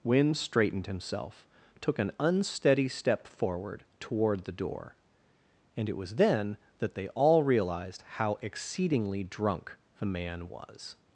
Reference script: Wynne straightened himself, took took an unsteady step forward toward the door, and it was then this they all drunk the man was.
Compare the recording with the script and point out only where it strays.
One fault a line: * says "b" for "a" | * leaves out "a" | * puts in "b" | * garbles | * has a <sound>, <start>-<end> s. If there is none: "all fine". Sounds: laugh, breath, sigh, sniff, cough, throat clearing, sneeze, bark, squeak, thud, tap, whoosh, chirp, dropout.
* leaves out "took"
* says "that" for "this"
* puts in "realized how exceedingly"